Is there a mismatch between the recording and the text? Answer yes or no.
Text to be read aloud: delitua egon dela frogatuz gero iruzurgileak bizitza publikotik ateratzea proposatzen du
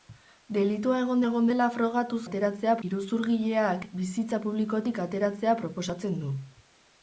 yes